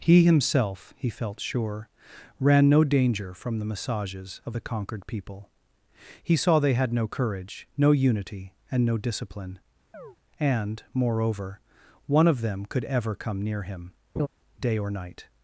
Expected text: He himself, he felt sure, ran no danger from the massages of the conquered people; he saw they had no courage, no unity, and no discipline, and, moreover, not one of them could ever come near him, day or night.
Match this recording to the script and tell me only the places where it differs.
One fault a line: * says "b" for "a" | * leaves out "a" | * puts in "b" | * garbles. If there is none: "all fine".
* leaves out "not"